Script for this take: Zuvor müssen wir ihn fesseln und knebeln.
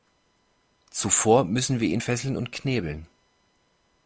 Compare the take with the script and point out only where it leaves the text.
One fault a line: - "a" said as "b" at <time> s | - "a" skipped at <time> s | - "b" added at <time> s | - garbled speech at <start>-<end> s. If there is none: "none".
none